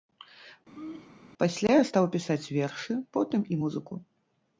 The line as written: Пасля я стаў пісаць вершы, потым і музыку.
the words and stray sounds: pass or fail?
fail